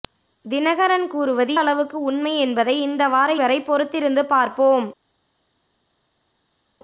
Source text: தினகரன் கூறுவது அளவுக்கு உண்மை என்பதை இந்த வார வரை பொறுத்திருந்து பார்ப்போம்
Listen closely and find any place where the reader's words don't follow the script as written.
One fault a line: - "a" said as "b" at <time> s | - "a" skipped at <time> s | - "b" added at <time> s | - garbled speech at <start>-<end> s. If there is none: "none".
none